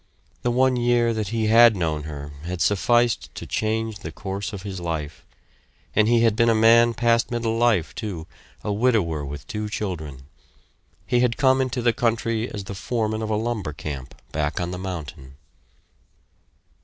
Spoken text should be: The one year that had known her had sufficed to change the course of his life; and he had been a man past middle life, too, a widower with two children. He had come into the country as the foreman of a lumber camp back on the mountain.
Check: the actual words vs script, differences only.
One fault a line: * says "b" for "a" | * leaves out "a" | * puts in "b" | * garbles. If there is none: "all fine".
* puts in "he"